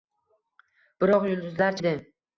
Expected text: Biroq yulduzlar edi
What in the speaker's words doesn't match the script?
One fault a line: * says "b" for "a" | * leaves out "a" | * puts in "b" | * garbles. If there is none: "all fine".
all fine